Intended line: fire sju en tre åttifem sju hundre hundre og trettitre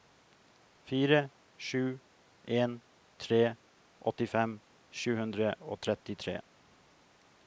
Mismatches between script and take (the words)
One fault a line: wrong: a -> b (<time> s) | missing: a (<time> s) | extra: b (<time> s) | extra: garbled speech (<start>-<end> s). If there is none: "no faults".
missing: hundre (5.5 s)